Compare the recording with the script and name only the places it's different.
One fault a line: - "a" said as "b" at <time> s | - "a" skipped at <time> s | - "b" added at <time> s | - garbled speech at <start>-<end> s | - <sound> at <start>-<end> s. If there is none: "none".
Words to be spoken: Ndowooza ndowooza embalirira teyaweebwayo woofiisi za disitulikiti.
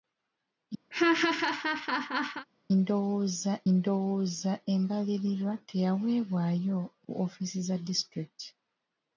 - laugh at 0.9-2.5 s